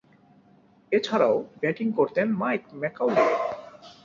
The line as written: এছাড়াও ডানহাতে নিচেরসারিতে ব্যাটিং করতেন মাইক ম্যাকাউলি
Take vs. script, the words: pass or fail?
fail